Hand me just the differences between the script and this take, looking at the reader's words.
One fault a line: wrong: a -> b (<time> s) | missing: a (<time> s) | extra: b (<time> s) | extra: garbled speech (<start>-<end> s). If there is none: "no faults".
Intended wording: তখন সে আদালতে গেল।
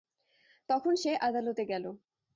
no faults